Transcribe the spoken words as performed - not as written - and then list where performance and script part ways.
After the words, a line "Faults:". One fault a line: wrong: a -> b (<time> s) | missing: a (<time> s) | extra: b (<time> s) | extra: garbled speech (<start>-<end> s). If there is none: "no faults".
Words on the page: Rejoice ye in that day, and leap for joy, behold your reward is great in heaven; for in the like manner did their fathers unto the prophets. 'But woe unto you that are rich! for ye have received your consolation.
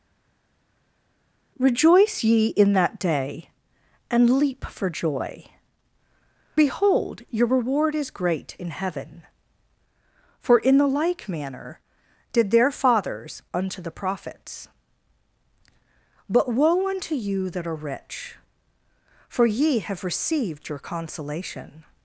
Rejoice ye in that day, and leap for joy, behold your reward is great in heaven; for in the like manner did their fathers unto the prophets. 'But woe unto you that are rich! for ye have received your consolation.
Faults:
no faults